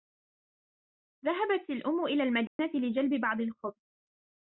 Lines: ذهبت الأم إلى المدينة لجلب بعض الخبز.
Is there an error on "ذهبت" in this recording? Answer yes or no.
no